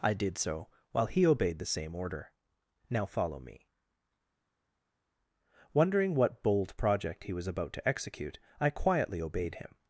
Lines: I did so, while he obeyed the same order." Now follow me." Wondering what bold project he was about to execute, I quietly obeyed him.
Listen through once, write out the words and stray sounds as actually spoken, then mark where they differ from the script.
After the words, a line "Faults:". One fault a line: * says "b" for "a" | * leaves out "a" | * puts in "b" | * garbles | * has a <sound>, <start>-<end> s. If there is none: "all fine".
I did so, while he obeyed the same order." Now follow me." Wondering what bold project he was about to execute, I quietly obeyed him.
Faults:
all fine